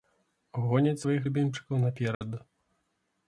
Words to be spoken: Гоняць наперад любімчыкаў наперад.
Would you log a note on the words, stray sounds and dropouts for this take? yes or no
yes